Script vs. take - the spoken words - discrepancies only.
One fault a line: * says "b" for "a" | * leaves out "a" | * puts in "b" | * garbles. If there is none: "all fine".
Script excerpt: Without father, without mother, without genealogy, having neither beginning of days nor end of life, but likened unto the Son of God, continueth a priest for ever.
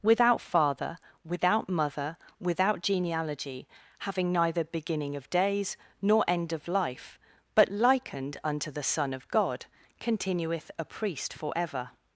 all fine